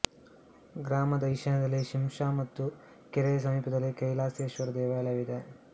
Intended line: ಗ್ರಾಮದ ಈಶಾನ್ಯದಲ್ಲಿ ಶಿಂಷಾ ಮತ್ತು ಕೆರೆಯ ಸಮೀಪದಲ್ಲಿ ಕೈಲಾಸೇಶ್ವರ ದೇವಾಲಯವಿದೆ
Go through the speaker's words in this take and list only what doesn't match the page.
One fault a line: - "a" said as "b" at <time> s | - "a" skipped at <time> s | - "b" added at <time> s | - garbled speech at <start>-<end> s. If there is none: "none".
none